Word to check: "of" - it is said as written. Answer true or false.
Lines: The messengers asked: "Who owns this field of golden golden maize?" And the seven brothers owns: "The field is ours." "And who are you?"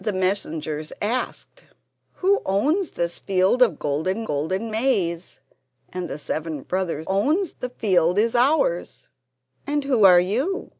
true